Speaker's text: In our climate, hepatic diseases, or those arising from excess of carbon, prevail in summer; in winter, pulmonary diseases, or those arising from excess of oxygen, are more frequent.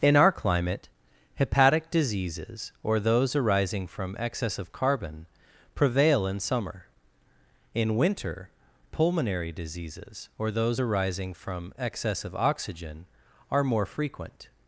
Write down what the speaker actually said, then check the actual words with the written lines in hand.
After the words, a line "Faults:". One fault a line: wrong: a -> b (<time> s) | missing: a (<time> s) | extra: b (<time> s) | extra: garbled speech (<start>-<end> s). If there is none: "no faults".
In our climate, hepatic diseases, or those arising from excess of carbon, prevail in summer; in winter, pulmonary diseases, or those arising from excess of oxygen, are more frequent.
Faults:
no faults